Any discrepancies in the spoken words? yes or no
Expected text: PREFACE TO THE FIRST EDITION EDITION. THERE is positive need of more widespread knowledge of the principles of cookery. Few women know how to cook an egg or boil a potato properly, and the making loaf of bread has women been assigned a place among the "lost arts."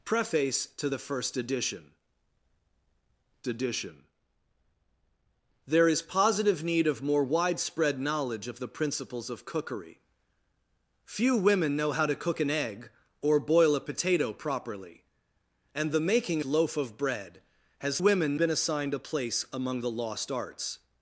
no